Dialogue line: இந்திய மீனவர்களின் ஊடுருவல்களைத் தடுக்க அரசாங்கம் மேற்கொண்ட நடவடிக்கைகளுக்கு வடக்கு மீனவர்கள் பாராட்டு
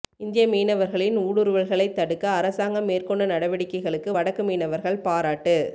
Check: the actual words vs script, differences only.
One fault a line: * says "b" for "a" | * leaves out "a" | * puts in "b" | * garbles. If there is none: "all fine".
all fine